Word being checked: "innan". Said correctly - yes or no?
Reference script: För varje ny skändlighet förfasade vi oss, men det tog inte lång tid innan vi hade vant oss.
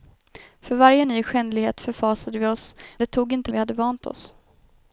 no